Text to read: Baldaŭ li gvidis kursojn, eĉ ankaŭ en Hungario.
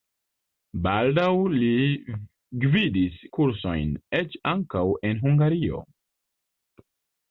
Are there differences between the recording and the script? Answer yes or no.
no